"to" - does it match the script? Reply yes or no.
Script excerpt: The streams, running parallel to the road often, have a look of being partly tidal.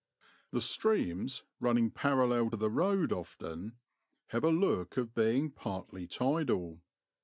no